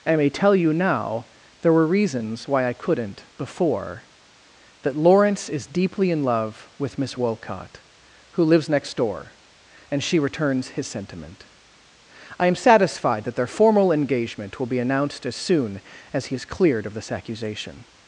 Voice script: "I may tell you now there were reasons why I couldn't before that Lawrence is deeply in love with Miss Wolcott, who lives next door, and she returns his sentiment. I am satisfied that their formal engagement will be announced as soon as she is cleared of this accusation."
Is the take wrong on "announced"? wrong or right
right